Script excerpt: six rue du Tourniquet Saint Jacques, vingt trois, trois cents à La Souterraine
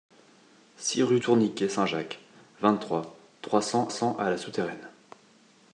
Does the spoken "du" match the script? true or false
false